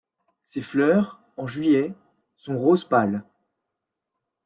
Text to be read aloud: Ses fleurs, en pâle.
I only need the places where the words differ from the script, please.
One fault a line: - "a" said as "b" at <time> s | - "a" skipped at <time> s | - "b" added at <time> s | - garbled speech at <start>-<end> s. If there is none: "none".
- "juillet sont rose" added at 1.4 s